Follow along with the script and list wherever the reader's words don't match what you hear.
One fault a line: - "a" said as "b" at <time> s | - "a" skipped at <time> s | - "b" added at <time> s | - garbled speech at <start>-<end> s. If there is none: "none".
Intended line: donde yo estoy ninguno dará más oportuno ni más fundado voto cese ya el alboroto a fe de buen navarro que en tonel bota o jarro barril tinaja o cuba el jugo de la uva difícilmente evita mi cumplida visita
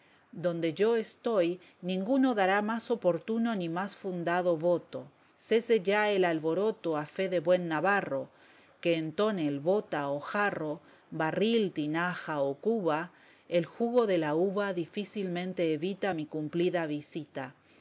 none